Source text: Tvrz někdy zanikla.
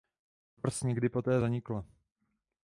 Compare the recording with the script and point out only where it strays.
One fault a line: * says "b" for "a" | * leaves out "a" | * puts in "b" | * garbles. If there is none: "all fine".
* puts in "poté"